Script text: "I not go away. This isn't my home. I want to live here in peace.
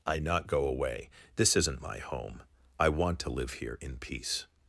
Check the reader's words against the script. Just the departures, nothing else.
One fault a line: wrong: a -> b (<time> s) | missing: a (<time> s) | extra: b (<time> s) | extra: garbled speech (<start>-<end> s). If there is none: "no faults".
no faults